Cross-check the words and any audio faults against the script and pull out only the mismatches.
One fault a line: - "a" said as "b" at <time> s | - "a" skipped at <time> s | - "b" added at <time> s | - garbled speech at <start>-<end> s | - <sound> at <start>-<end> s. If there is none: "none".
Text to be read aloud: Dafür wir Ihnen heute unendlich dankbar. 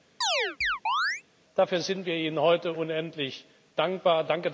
- chirp at 0.2-1.2 s
- "sind" added at 1.8 s